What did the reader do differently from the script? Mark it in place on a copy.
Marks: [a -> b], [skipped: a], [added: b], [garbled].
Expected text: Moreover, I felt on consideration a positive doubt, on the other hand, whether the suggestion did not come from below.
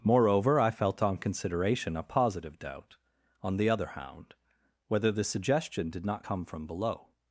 Moreover, I felt on consideration a positive doubt, on the other [hand, -> hound] whether the suggestion did not come from below.